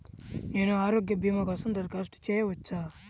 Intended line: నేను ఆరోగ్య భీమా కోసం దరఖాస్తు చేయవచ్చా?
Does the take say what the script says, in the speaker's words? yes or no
yes